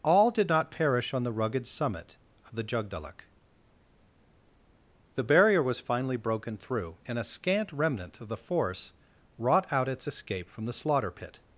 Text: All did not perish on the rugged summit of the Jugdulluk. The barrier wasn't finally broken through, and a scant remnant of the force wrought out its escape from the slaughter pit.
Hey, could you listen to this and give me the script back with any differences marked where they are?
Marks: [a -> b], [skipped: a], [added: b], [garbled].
All did not perish on the rugged summit of the Jugdulluk. The barrier [wasn't -> was] finally broken through, and a scant remnant of the force wrought out its escape from the slaughter pit.